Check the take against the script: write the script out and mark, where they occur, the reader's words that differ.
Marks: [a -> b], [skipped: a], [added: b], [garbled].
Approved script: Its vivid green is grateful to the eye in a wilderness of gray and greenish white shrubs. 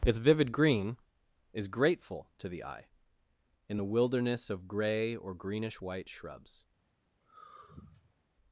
Its vivid green is grateful to the eye in [a -> the] wilderness of gray [and -> or] greenish white shrubs.